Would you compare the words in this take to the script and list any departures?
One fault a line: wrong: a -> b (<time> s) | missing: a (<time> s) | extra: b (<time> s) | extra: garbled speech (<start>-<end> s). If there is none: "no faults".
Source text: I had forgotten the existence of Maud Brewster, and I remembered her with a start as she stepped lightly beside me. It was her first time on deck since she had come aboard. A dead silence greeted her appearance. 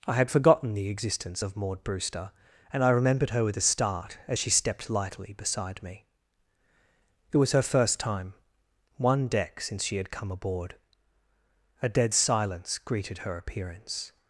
wrong: on -> one (9.0 s)